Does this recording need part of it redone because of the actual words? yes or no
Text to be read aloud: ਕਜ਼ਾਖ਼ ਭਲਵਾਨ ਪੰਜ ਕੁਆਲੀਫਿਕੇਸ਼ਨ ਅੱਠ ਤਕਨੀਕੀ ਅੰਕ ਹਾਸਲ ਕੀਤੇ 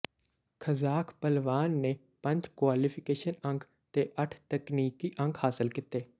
yes